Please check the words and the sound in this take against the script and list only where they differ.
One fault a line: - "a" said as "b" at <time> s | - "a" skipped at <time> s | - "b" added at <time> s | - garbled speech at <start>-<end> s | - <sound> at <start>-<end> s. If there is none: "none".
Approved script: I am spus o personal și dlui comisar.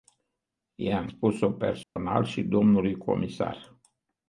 - dropout at 1.8-2.0 s